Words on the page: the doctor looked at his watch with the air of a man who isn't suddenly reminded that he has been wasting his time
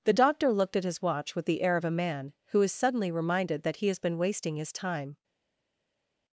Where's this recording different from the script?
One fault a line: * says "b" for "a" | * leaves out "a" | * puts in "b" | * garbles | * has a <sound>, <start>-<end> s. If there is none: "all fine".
* says "is" for "isn't"